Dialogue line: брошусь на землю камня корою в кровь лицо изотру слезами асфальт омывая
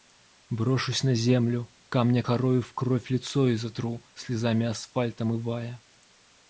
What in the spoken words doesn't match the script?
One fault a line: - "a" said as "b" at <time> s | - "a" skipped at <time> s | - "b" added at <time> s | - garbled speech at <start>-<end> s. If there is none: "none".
none